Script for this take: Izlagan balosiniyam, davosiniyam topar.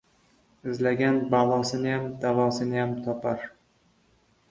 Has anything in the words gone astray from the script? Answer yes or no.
no